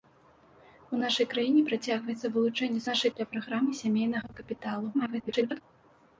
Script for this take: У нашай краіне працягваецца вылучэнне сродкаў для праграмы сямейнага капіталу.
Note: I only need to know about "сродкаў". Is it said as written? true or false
false